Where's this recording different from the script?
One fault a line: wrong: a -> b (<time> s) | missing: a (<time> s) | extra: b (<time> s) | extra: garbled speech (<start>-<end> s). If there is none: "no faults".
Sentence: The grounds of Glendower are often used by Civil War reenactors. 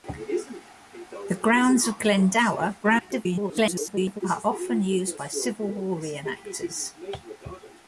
extra: garbled speech (2.8-4.2 s)